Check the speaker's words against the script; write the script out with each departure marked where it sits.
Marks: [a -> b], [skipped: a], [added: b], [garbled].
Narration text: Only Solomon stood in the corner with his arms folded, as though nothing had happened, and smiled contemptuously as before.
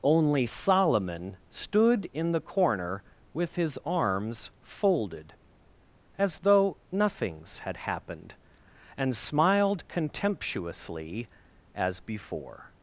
Only Solomon stood in the corner with his arms folded, as though [nothing -> nothings] had happened, and smiled contemptuously as before.